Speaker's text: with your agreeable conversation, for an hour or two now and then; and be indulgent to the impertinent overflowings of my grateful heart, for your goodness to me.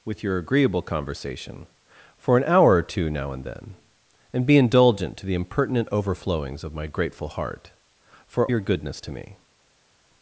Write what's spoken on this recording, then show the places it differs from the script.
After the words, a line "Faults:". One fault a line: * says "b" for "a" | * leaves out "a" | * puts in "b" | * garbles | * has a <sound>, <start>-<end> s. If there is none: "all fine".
with your agreeable conversation, for an hour or two now and then; and be indulgent to the impertinent overflowings of my grateful heart, for your goodness to me.
Faults:
all fine